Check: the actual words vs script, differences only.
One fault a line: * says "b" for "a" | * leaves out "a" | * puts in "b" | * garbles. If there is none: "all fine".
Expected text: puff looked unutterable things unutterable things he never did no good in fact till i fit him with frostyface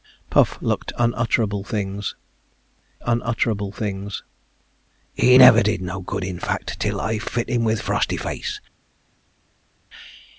all fine